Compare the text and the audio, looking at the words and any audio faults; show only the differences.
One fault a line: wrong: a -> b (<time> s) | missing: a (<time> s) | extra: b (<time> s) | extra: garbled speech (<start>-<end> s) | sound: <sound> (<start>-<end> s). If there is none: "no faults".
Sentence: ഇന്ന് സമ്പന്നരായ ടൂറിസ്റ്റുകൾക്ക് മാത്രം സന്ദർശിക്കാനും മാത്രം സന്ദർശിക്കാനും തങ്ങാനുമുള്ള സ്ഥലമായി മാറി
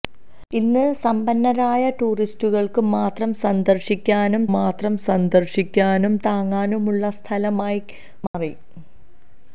sound: dropout (8.3-8.3 s)